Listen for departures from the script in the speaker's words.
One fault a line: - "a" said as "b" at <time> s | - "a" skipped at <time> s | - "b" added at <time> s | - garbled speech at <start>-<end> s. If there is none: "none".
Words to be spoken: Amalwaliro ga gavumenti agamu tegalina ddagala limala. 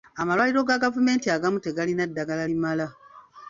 none